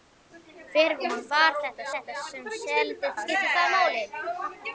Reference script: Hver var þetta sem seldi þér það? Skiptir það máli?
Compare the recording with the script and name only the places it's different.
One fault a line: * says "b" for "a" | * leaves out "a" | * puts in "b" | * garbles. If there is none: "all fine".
* puts in "þetta"
* leaves out "þér það"